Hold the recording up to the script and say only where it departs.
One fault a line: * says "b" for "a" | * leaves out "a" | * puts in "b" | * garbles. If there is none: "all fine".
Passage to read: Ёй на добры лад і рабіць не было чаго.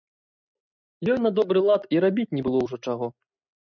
* puts in "ўжо"